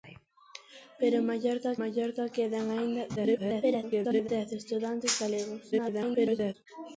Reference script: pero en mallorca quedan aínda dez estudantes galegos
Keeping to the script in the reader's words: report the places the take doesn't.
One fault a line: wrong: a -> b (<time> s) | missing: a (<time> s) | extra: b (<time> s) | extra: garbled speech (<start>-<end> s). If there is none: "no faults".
extra: mallorca (1.8 s)
extra: garbled speech (3.2-4.3 s)
extra: garbled speech (5.7-6.5 s)